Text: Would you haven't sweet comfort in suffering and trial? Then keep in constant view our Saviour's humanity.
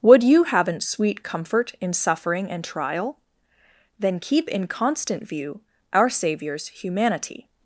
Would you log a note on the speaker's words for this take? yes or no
no